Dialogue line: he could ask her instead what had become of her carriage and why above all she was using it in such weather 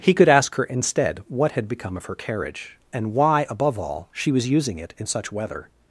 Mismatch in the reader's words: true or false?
false